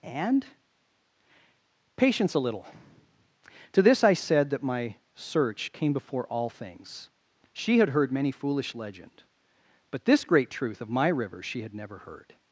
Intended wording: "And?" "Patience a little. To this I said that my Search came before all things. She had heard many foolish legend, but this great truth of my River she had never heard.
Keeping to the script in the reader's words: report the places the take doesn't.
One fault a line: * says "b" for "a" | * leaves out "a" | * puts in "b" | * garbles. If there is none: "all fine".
all fine